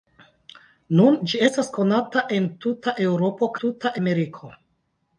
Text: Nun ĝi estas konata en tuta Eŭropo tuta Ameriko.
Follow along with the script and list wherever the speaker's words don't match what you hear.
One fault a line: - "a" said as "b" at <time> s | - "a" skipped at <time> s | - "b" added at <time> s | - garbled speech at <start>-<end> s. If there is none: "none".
none